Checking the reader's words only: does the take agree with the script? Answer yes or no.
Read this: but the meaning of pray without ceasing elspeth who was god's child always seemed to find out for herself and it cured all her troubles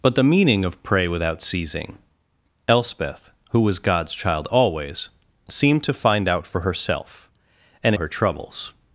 no